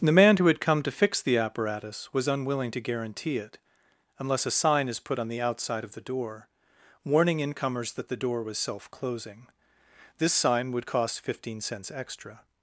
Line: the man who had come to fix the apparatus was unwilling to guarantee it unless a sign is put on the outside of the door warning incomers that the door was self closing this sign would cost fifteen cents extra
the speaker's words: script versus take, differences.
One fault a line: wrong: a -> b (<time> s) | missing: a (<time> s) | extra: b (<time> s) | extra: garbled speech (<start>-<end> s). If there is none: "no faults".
no faults